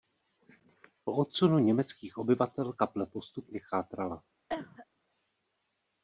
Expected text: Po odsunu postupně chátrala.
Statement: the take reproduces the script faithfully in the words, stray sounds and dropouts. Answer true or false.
false